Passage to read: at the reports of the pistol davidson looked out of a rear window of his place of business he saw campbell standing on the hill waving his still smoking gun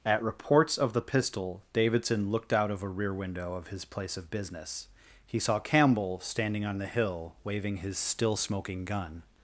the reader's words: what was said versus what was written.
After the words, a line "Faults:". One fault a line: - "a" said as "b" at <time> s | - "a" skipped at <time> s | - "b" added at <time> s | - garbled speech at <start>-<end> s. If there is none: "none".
at reports of the pistol davidson looked out of a rear window of his place of business he saw campbell standing on the hill waving his still smoking gun
Faults:
- "the" skipped at 0.2 s